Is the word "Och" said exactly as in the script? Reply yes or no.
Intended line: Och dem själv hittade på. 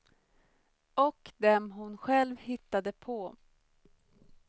yes